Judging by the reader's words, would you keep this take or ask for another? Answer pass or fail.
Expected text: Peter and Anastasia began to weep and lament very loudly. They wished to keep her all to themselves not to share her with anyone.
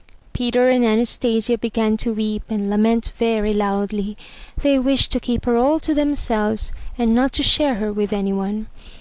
fail